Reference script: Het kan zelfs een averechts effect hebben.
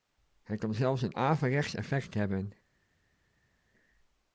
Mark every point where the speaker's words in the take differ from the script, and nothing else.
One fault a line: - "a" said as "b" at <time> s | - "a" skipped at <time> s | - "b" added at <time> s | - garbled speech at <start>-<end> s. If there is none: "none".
none